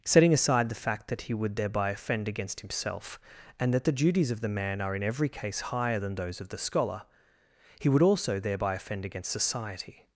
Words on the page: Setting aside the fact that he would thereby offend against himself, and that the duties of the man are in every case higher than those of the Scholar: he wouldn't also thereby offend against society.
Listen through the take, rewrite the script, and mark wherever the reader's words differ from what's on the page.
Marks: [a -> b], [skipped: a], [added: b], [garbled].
Setting aside the fact that he would thereby offend against himself, and that the duties of the man are in every case higher than those of the Scholar: he [wouldn't -> would] also thereby offend against society.